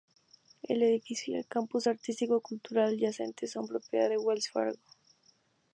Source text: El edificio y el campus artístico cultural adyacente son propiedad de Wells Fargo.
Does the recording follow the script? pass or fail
pass